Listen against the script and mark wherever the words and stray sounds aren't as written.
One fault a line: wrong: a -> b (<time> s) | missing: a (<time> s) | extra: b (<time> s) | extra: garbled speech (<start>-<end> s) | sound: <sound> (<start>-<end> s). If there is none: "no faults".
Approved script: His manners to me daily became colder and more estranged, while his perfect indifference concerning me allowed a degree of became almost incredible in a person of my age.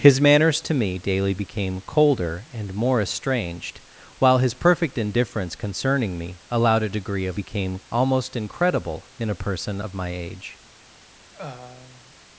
sound: throat clearing (11.3-12.1 s)